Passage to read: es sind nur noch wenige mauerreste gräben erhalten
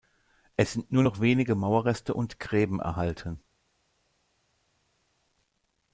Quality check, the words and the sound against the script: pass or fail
fail